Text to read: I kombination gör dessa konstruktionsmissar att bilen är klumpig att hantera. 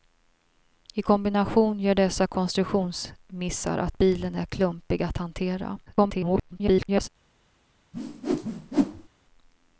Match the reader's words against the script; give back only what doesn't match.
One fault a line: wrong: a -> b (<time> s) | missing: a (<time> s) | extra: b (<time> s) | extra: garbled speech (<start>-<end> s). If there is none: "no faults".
extra: garbled speech (5.9-7.1 s)